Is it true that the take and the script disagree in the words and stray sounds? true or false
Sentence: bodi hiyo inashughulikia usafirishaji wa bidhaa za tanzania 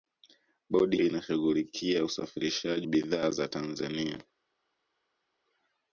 true